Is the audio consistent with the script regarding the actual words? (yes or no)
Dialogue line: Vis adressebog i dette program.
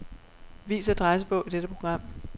yes